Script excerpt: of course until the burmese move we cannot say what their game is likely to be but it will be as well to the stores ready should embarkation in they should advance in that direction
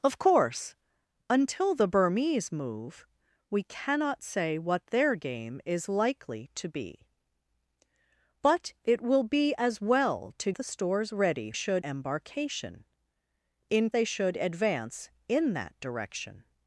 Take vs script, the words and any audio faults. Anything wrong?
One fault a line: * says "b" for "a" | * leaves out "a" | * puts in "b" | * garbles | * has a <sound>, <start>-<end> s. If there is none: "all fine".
all fine